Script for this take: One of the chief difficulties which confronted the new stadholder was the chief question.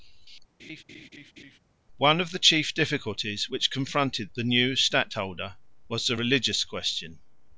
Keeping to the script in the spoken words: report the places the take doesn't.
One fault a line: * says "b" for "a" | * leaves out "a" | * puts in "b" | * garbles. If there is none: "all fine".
* says "religious" for "chief"